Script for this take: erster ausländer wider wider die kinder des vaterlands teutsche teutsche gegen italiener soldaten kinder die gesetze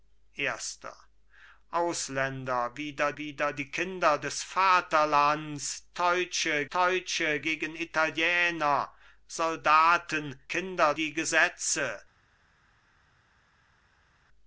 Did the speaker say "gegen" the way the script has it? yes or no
yes